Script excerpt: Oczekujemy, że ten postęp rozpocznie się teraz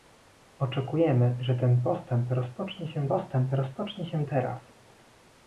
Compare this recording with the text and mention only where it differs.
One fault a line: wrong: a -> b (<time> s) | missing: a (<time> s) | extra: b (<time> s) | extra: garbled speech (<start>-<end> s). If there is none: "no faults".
extra: postęp rozpocznie się (3.1 s)